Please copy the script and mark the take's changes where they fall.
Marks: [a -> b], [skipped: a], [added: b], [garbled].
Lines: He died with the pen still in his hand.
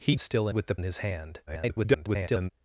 He [died -> still] with the [skipped: pen still] in his hand. [garbled]